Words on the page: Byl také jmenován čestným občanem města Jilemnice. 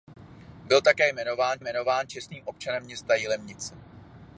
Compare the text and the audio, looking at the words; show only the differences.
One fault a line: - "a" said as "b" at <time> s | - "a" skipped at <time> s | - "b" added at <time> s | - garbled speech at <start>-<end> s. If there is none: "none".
- "jmenován" added at 1.6 s